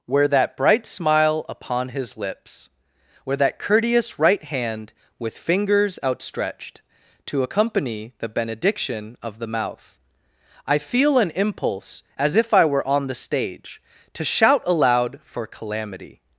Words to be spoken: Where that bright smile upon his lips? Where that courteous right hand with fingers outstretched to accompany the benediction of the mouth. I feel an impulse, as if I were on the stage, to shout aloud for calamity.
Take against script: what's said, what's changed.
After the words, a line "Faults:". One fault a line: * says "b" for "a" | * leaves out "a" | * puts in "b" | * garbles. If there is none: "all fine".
Where that bright smile upon his lips? Where that courteous right hand with fingers outstretched to accompany the benediction of the mouth. I feel an impulse, as if I were on the stage, to shout aloud for calamity.
Faults:
all fine